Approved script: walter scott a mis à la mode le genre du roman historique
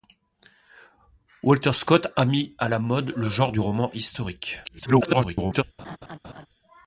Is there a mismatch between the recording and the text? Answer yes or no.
yes